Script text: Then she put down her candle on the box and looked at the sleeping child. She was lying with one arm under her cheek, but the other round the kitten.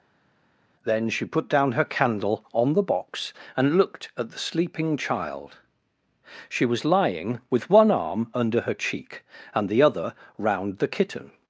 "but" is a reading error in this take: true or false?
true